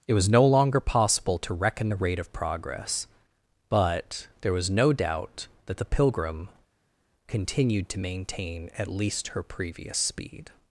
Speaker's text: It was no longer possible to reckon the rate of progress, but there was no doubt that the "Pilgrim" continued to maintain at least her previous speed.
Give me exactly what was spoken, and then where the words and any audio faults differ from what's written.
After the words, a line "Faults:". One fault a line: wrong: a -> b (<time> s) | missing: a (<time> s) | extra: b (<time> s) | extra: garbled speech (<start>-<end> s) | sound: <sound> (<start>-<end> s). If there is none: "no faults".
It was no longer possible to reckon the rate of progress, but there was no doubt that the "Pilgrim" continued to maintain at least her previous speed.
Faults:
no faults